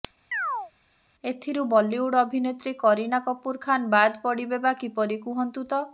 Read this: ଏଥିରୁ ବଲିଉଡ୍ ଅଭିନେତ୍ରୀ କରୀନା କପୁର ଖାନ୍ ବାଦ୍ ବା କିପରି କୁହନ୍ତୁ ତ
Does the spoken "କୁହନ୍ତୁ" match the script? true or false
true